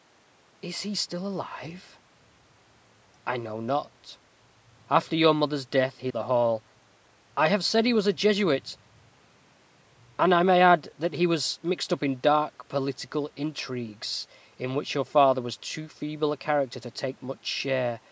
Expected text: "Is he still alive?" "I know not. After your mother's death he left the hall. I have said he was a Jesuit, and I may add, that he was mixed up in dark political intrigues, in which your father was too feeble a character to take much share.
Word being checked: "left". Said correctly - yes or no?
no